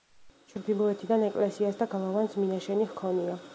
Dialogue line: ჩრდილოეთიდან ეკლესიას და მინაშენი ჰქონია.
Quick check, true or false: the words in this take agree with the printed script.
false